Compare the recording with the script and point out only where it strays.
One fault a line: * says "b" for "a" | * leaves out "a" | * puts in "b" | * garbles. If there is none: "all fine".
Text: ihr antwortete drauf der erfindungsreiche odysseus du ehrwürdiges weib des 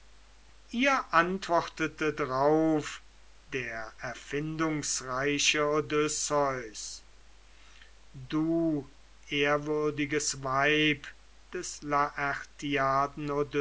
all fine